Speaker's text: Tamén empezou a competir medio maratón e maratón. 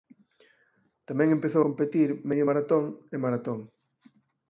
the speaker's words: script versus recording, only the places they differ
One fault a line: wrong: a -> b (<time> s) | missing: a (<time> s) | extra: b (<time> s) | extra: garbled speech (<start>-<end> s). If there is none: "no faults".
missing: a (1.6 s)